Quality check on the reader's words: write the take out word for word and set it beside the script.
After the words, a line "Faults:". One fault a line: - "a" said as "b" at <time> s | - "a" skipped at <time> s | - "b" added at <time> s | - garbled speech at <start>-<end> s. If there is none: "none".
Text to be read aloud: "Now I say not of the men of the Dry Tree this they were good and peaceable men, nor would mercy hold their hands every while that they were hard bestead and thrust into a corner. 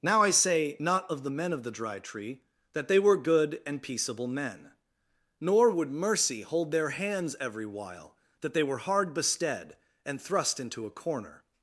"Now I say not of the men of the Dry Tree that they were good and peaceable men, nor would mercy hold their hands every while that they were hard bestead and thrust into a corner.
Faults:
- "this" said as "that" at 2.7 s